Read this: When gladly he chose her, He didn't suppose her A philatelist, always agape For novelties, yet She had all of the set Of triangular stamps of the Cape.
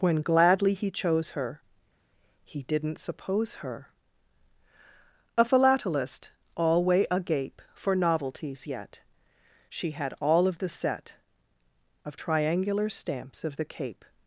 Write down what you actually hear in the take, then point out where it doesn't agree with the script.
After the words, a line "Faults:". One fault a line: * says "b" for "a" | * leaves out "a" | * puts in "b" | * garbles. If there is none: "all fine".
When gladly he chose her, He didn't suppose her A philatelist, alway agape For novelties, yet She had all of the set Of triangular stamps of the Cape.
Faults:
* says "alway" for "always"